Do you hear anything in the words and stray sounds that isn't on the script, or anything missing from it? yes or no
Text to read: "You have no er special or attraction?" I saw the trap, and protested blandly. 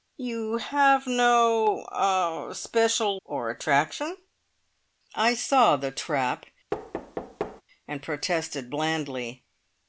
yes